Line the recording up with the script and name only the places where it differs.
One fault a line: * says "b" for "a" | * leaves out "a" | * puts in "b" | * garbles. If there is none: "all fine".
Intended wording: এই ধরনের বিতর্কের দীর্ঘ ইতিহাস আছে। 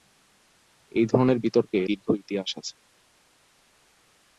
all fine